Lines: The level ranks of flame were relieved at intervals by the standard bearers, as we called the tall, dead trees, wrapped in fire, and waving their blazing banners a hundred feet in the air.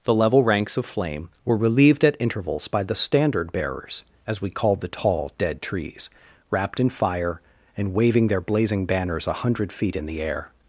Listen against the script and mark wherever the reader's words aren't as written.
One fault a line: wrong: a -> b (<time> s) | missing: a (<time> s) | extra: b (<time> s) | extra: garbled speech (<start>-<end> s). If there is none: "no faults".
no faults